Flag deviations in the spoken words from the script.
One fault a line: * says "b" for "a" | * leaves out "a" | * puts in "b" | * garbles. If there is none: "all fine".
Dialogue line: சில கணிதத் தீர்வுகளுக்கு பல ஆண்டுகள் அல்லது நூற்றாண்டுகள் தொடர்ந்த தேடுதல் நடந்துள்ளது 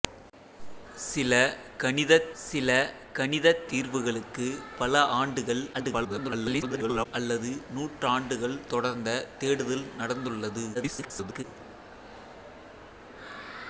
* puts in "சில கணிதத்"
* garbles
* garbles